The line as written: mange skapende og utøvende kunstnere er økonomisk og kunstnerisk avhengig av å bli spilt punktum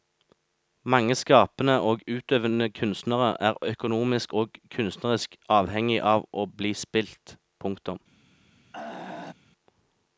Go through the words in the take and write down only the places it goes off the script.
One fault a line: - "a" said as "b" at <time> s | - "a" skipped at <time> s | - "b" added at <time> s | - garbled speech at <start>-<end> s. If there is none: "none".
none